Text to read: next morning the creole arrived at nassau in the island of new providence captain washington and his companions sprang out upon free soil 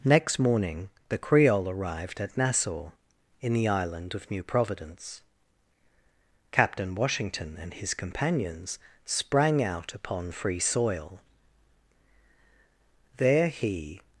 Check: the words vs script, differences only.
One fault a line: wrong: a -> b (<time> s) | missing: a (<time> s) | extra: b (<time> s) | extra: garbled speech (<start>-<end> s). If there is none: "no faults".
extra: there he (13.2 s)